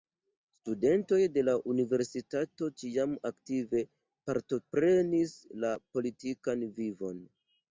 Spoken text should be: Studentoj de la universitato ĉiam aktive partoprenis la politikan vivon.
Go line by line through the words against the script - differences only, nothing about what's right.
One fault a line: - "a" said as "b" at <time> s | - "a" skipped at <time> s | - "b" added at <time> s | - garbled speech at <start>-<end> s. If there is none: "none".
none